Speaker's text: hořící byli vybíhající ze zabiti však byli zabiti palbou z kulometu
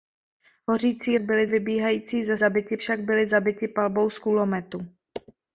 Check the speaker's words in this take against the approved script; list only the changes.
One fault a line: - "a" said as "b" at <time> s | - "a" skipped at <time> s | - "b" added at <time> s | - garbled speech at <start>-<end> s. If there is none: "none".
none